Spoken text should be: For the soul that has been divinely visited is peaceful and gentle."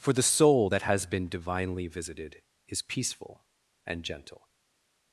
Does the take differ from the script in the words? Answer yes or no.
no